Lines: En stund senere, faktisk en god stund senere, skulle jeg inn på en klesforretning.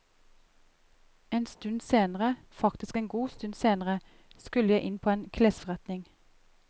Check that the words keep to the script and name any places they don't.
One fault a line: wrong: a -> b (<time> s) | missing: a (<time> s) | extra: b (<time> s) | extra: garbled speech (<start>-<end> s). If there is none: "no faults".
no faults